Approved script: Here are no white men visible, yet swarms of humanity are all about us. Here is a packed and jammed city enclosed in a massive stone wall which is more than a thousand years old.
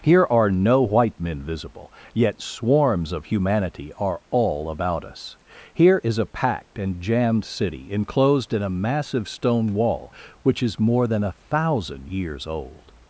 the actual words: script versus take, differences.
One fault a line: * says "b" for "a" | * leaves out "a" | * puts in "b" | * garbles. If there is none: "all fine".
all fine